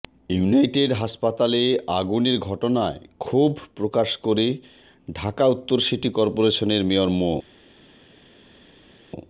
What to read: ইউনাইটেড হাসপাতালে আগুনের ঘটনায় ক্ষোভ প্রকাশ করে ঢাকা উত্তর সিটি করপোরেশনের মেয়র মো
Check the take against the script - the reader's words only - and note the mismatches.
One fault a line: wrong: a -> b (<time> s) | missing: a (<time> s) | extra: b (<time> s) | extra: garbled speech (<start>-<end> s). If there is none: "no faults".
no faults